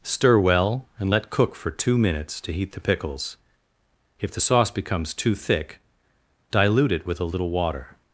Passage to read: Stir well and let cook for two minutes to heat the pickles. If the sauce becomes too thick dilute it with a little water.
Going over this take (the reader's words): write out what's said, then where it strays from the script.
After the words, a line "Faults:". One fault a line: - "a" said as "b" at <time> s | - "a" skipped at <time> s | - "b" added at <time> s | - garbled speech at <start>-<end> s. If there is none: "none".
Stir well and let cook for two minutes to heat the pickles. If the sauce becomes too thick dilute it with a little water.
Faults:
none